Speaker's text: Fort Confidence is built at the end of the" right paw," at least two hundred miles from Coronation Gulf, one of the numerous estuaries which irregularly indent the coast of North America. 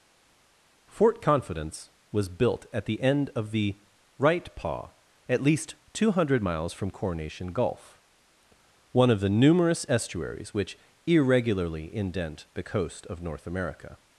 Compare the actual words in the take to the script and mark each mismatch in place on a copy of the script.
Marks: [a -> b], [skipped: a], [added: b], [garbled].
Fort Confidence [is -> was] built at the end of the" right paw," at least two hundred miles from Coronation Gulf, one of the numerous estuaries which irregularly indent the coast of North America.